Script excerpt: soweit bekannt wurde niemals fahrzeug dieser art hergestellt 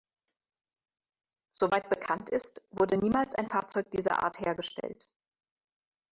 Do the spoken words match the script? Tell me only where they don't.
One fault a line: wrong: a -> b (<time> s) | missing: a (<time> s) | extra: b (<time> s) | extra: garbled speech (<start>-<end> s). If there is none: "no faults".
extra: ist (2.3 s)
extra: ein (3.4 s)